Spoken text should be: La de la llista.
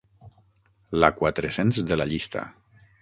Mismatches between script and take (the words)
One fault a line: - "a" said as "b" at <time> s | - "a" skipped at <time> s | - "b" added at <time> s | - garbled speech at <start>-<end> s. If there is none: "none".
- "quatre cents" added at 1.2 s